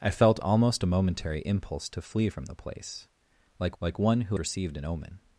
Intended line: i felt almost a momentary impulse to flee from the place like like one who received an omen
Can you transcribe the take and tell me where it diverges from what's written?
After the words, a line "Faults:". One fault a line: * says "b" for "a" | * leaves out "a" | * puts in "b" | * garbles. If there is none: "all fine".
i felt almost a momentary impulse to flee from the place like like one who received an omen
Faults:
all fine